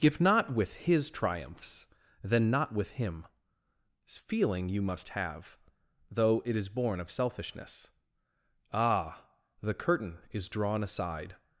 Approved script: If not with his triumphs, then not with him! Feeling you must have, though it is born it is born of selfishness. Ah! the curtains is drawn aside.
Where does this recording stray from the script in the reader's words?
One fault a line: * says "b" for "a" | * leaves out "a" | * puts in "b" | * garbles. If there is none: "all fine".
* leaves out "it is born"
* says "curtain" for "curtains"